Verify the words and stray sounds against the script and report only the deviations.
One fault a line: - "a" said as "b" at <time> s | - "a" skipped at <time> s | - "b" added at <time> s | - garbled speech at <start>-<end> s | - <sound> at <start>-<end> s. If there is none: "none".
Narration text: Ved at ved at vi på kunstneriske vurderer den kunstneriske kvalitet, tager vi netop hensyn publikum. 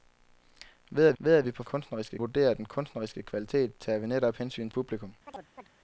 - chirp at 5.3-5.7 s